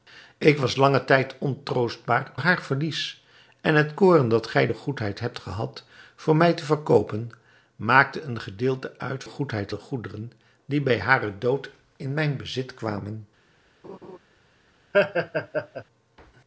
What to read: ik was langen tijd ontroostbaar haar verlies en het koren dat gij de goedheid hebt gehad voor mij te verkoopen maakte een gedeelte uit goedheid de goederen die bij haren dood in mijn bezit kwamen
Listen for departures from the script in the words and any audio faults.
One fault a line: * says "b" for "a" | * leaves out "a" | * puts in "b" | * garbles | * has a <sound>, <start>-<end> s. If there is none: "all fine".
* has a laugh, 13.8-14.2 s
* has a laugh, 14.9-15.8 s